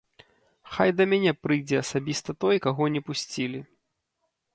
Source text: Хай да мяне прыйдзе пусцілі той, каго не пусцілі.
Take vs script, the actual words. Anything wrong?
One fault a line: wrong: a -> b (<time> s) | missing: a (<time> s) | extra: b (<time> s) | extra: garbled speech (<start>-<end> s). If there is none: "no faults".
wrong: пусцілі -> асабіста (1.8 s)